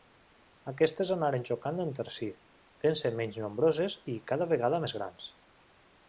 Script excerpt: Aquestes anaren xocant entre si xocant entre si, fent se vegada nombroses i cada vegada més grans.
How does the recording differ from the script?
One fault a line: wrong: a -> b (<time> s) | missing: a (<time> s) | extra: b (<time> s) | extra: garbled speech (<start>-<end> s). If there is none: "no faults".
missing: xocant entre si (2.3 s)
wrong: vegada -> menys (3.2 s)